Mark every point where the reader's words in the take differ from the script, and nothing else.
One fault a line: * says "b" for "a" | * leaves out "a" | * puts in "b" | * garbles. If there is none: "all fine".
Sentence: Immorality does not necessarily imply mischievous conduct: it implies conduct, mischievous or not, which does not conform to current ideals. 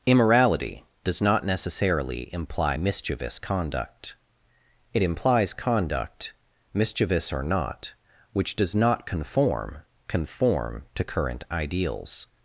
* puts in "conform"